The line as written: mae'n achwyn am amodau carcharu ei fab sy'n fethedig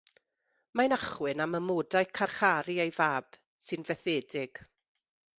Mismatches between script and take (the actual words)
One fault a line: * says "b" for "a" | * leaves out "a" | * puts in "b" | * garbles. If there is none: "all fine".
all fine